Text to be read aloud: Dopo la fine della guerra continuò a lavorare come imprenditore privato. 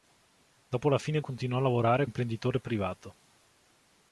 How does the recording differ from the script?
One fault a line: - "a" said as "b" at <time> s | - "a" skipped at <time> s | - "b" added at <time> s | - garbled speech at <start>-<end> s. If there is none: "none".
- "della guerra" skipped at 1.2 s
- "come" skipped at 2.1 s